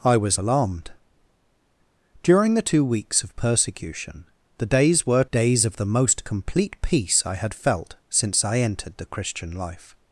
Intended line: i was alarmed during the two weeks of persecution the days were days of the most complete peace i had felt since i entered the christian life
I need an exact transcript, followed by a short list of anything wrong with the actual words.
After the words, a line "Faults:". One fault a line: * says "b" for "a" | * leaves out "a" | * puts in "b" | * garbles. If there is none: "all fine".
i was alarmed during the two weeks of persecution the days were days of the most complete peace i had felt since i entered the christian life
Faults:
all fine